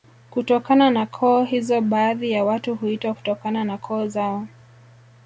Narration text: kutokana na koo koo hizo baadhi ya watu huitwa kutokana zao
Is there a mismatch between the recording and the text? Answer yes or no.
yes